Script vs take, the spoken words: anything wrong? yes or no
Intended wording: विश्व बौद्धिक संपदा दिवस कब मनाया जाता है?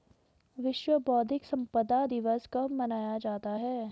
no